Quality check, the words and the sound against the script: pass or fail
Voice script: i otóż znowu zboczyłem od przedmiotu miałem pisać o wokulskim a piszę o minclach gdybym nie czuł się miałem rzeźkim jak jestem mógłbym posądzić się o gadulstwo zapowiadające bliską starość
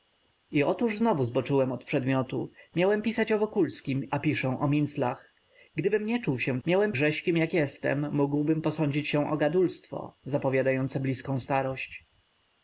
pass